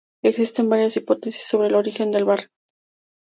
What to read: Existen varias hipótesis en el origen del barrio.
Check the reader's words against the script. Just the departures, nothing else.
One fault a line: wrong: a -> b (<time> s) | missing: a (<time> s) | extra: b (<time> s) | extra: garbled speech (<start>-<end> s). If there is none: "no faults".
wrong: en -> sobre (1.4 s)